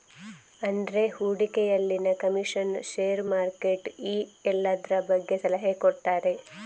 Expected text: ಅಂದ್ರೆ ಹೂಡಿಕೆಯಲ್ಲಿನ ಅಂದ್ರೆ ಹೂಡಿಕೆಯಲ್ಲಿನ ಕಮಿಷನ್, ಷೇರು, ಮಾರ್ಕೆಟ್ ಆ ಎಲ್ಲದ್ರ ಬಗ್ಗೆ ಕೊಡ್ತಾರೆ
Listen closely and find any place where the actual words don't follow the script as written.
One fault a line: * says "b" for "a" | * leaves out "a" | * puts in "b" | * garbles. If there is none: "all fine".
* leaves out "ಅಂದ್ರೆ ಹೂಡಿಕೆಯಲ್ಲಿನ"
* says "ಈ" for "ಆ"
* puts in "ಸಲಹೆ"